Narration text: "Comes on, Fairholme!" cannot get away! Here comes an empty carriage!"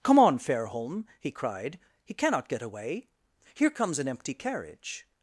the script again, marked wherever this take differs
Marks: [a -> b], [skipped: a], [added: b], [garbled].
["Comes -> Come] on, Fairholme!" [added: he cried He] cannot get away! Here comes an empty carriage!"